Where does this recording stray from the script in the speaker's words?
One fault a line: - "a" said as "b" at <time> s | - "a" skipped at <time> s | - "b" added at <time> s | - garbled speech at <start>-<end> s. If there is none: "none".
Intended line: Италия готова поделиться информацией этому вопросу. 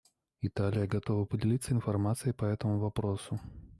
- "по" added at 2.3 s